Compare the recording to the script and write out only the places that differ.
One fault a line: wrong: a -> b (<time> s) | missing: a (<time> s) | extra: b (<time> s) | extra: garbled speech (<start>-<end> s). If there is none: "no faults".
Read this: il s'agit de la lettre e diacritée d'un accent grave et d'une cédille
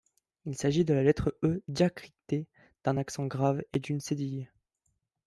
no faults